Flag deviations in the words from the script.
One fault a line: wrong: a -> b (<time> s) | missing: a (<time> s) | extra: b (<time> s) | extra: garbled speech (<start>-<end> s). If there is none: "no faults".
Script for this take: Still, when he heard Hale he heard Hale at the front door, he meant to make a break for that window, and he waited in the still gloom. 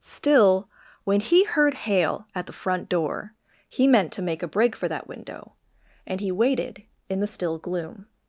missing: he heard Hale (2.3 s)